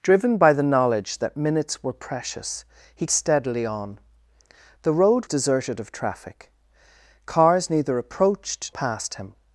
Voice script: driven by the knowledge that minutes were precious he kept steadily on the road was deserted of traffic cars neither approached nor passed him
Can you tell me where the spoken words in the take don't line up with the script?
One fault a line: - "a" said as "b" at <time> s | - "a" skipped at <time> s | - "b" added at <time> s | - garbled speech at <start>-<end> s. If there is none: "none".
- "kept" skipped at 3.0 s
- "was" skipped at 5.3 s
- "nor" skipped at 8.7 s